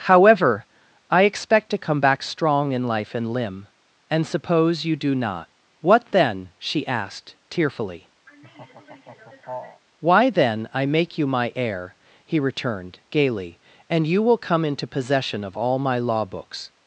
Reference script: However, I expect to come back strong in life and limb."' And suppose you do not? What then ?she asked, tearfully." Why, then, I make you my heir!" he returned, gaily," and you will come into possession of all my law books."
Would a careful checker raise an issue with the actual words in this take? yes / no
no